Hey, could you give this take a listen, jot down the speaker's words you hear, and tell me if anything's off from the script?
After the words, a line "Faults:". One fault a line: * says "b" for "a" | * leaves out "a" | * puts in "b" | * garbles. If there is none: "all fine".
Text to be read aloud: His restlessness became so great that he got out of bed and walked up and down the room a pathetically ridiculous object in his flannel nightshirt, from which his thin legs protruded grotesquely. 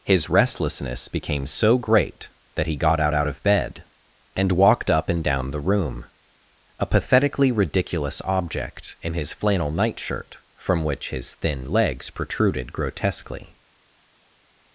His restlessness became so great that he got out out of bed and walked up and down the room a pathetically ridiculous object in his flannel nightshirt, from which his thin legs protruded grotesquely.
Faults:
* puts in "out"